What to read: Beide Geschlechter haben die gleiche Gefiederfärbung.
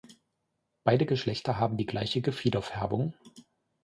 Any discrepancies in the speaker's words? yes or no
no